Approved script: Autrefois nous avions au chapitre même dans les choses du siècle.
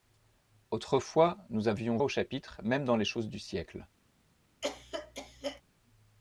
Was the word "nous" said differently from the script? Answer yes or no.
no